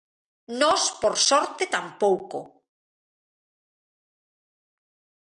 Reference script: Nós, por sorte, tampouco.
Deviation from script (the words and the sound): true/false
false